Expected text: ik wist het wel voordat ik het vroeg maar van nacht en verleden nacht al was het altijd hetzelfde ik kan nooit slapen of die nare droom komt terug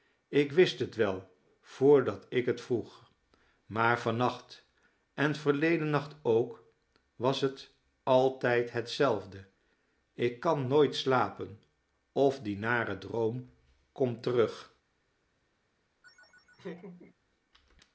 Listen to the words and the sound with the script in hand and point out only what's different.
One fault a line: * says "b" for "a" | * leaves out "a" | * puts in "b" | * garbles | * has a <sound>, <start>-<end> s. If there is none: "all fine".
* says "ook" for "al"
* has a laugh, 16.0-17.1 s